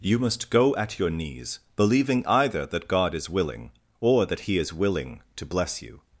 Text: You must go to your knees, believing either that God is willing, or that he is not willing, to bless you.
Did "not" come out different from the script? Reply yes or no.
yes